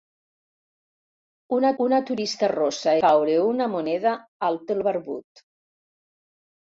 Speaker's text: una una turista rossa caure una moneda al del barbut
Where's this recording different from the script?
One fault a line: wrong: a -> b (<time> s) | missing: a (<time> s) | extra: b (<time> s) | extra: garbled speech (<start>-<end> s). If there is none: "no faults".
no faults